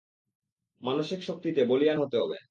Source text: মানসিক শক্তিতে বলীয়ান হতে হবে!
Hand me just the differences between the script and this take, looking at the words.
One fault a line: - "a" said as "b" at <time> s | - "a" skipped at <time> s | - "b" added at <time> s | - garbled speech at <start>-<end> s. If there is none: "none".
none